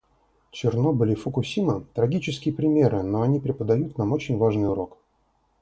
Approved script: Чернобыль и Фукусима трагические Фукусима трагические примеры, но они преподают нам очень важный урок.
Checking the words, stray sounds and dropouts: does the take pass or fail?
fail